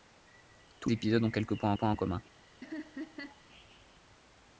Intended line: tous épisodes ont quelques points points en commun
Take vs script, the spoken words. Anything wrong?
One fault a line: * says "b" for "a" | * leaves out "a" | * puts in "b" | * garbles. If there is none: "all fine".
all fine